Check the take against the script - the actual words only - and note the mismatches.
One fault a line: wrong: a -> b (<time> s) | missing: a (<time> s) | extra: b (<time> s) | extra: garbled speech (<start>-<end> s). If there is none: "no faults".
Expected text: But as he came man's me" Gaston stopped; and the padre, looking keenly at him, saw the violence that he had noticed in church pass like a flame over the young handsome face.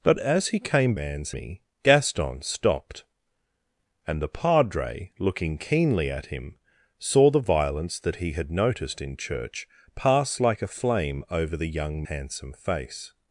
no faults